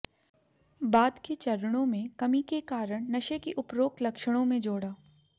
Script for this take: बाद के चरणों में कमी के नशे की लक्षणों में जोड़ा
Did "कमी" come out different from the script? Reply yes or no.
no